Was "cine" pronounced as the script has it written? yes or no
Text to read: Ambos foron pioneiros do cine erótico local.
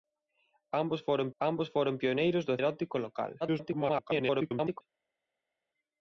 no